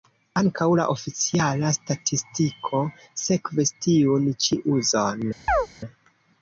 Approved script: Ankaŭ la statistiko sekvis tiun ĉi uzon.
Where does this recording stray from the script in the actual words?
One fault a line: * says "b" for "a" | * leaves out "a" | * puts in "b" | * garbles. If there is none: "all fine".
* puts in "oficiala"